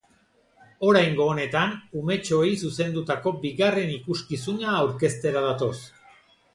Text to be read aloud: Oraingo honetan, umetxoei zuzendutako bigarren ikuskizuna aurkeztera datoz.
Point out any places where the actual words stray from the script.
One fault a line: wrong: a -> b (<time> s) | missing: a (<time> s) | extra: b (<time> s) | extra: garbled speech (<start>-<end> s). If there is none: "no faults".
no faults